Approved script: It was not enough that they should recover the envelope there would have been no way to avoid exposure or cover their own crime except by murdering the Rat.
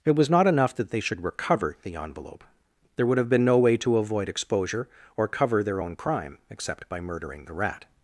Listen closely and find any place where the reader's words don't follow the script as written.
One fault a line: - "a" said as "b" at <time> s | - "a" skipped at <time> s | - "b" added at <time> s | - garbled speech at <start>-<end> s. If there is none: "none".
none